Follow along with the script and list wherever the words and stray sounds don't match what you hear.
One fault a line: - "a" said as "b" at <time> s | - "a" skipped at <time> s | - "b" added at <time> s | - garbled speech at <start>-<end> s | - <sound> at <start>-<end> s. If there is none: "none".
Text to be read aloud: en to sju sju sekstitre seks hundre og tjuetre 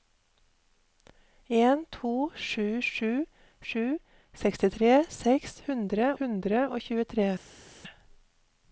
- "sju" added at 3.7 s
- "hundre" added at 6.2 s